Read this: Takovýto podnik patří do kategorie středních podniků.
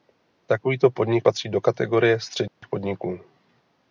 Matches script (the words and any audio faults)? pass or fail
fail